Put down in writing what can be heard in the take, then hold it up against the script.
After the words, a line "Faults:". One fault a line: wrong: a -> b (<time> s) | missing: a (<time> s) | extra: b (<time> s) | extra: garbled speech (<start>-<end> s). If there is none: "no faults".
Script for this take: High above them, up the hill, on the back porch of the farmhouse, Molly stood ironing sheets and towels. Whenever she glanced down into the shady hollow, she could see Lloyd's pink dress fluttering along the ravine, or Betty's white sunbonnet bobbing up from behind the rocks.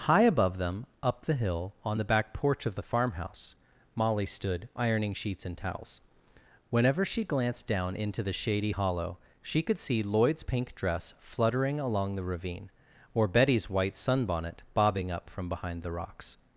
High above them, up the hill, on the back porch of the farmhouse, Molly stood ironing sheets and towels. Whenever she glanced down into the shady hollow, she could see Lloyd's pink dress fluttering along the ravine, or Betty's white sunbonnet bobbing up from behind the rocks.
Faults:
no faults